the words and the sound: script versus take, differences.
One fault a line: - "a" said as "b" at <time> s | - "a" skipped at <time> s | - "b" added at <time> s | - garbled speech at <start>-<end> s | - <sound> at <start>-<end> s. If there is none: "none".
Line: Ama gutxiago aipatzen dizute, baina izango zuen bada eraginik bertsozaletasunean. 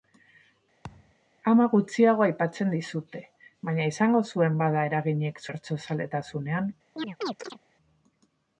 - thud at 0.8-1.1 s
- chirp at 7.0-7.6 s